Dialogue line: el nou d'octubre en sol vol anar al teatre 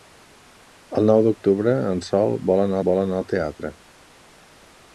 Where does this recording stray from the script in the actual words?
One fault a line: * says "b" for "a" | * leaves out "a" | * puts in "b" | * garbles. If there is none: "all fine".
* puts in "vol anar"